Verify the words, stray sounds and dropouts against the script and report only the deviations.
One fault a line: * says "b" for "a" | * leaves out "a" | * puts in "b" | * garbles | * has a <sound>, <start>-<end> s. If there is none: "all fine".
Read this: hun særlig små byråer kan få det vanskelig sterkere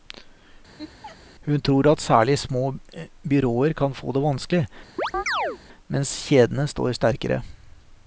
* has a laugh, 0.8-1.2 s
* puts in "tror at"
* has a chirp, 5.0-5.6 s
* puts in "mens kjedene står"